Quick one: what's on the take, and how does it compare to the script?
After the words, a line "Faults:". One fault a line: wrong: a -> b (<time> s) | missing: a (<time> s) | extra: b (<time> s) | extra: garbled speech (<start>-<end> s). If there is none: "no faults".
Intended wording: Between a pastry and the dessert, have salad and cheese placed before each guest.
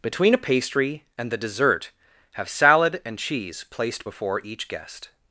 Between a pastry and the dessert, have salad and cheese placed before each guest.
Faults:
no faults